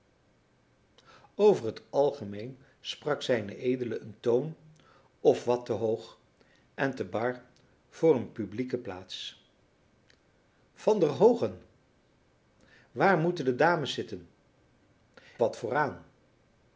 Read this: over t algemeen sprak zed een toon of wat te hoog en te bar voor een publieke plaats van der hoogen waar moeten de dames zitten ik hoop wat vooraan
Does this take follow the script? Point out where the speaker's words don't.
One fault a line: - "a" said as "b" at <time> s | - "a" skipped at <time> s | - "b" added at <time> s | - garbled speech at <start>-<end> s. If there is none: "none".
- "ik hoop" skipped at 14.3 s